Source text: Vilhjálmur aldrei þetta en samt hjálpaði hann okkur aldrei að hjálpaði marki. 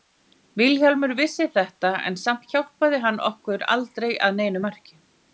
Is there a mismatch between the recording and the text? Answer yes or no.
yes